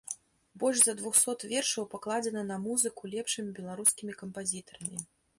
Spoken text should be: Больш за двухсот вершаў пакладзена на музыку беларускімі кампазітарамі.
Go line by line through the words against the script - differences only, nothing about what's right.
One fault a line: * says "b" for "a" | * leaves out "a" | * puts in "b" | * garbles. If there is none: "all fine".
* puts in "лепшымі"